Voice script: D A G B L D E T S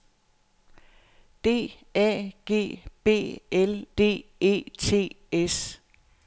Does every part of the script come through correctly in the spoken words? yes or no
yes